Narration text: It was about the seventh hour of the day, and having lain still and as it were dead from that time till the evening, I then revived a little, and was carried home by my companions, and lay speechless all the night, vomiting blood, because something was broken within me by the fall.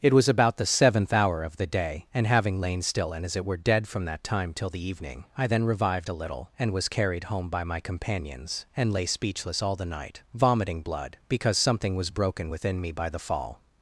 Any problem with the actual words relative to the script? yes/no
no